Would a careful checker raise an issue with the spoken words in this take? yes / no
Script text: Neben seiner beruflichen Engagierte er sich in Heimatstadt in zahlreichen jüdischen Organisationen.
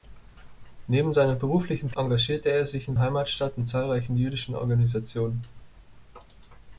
no